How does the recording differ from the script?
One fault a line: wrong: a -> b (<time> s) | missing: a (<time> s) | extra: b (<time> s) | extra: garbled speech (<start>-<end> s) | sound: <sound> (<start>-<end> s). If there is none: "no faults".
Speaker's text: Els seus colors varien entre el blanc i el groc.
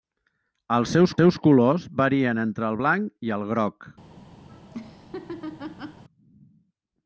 extra: seus (1.2 s)
sound: laugh (4.5-6.0 s)